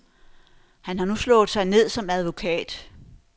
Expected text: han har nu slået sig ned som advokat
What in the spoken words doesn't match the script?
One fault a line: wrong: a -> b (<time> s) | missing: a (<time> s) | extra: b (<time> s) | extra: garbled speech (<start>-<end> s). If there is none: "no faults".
no faults